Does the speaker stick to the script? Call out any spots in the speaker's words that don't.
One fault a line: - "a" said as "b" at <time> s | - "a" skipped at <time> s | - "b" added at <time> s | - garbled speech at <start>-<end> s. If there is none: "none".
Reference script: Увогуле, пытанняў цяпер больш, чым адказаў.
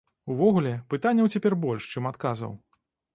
none